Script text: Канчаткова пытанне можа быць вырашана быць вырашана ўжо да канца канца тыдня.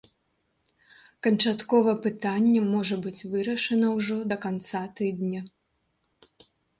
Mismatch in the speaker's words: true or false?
true